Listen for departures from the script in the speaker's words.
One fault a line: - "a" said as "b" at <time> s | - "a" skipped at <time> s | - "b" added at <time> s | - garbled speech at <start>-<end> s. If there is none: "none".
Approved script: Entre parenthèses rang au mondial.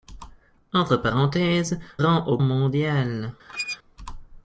none